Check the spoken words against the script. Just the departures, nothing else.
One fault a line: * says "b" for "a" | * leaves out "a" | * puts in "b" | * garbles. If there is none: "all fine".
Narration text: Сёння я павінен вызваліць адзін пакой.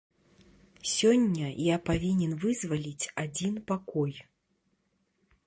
all fine